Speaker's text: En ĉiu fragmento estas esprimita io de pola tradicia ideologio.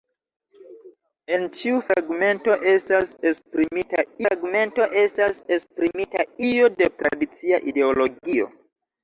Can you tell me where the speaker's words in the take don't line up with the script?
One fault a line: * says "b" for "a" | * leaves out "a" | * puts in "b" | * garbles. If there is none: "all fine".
* puts in "fragmento estas esprimita"
* leaves out "pola"